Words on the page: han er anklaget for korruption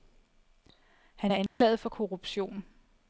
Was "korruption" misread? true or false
false